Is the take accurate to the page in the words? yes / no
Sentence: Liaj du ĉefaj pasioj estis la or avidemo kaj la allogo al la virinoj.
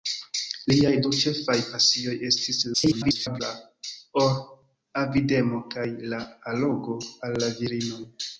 no